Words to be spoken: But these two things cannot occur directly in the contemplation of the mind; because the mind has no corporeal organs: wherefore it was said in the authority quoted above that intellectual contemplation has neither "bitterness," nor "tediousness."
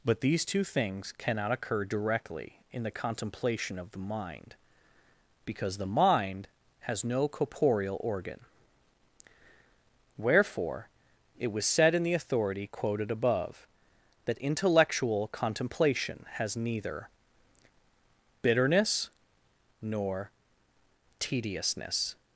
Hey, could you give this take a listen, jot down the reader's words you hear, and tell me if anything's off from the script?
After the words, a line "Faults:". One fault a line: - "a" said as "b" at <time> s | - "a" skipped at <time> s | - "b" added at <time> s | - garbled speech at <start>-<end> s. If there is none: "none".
But these two things cannot occur directly in the contemplation of the mind; because the mind has no corporeal organ: wherefore it was said in the authority quoted above that intellectual contemplation has neither "bitterness," nor "tediousness."
Faults:
- "organs" said as "organ" at 8.0 s